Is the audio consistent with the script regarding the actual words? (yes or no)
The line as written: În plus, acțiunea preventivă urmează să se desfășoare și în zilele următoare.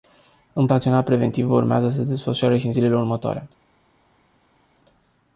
no